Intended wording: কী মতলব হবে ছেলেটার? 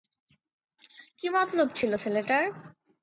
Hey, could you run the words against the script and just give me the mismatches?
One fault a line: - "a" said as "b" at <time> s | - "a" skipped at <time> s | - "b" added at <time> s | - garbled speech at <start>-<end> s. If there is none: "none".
- "হবে" said as "ছিল" at 1.8 s